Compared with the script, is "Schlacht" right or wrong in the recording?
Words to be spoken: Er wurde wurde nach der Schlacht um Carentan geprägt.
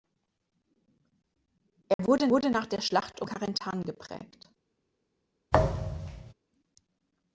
right